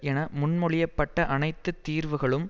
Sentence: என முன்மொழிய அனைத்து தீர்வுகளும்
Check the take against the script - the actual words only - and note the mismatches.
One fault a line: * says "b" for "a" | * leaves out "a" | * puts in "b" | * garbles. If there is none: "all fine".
* puts in "பட்ட"